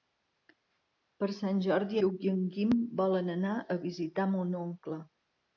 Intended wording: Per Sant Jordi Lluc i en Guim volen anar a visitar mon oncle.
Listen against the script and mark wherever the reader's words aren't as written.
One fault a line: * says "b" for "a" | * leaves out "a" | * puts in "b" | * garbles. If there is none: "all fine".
all fine